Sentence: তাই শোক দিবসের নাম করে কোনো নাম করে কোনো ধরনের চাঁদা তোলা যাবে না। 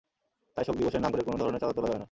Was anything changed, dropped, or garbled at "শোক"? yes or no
no